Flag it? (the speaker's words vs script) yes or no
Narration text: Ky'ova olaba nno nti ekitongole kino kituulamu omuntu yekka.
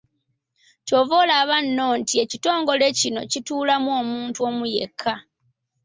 yes